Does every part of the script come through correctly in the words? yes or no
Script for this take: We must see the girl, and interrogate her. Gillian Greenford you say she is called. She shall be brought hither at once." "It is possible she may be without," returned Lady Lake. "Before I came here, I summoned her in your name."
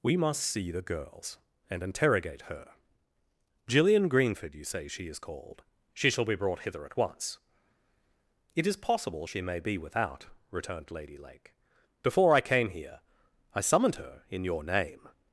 no